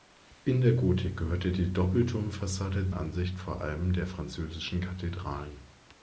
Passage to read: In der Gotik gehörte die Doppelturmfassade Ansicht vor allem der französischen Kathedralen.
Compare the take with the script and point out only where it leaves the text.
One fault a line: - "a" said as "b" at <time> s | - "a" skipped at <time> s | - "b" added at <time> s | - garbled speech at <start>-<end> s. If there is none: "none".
none